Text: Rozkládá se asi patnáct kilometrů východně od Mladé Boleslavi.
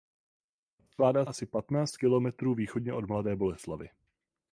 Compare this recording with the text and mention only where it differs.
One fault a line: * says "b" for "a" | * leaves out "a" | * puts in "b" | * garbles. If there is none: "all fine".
* leaves out "se"